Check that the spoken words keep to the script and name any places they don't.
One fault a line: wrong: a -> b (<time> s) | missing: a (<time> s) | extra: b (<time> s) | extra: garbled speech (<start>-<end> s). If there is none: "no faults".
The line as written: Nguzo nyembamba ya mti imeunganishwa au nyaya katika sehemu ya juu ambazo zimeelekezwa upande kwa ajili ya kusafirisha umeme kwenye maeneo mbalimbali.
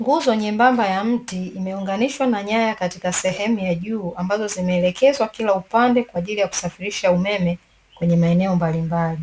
wrong: au -> na (2.3 s)
extra: kila (5.3 s)